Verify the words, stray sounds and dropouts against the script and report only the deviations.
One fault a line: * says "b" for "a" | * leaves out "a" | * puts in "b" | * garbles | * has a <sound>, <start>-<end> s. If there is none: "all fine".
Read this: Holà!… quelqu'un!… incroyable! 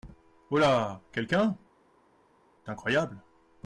all fine